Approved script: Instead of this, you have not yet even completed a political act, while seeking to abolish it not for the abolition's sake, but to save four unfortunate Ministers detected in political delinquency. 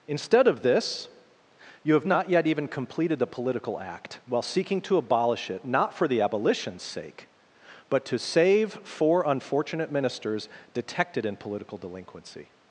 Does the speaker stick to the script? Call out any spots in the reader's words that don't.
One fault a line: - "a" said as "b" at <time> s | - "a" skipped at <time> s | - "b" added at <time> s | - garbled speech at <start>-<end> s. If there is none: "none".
- "a" said as "the" at 3.2 s